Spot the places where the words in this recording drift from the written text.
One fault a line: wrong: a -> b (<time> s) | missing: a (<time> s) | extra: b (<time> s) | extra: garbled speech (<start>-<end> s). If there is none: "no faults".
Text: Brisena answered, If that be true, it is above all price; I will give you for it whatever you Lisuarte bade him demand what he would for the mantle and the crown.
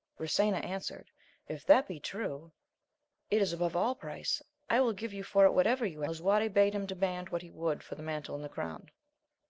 no faults